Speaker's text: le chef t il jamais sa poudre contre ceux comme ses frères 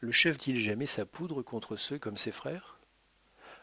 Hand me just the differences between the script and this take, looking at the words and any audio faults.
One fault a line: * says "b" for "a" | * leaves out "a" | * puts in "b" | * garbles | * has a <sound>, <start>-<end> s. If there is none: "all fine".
all fine